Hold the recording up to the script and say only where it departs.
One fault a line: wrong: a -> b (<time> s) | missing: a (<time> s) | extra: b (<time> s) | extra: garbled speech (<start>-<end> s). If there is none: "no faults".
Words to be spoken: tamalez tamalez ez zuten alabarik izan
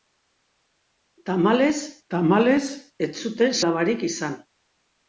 no faults